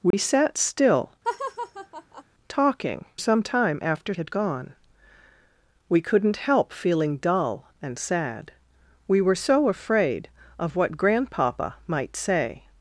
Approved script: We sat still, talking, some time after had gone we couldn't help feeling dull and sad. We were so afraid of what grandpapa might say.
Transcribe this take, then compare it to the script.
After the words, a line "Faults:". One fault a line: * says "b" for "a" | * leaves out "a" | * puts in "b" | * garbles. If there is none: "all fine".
We sat still, talking, some time after had gone we couldn't help feeling dull and sad. We were so afraid of what grandpapa might say.
Faults:
all fine